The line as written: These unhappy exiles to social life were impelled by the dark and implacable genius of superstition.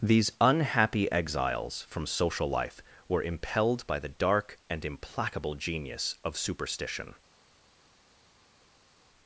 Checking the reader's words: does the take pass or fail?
fail